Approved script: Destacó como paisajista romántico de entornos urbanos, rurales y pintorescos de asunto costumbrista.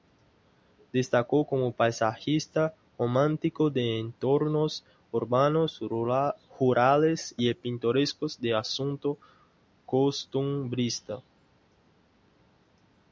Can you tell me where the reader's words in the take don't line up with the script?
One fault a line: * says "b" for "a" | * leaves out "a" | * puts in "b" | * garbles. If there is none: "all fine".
all fine